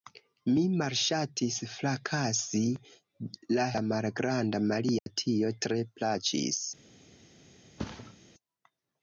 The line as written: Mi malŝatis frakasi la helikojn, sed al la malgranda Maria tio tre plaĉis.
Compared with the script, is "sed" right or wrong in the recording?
wrong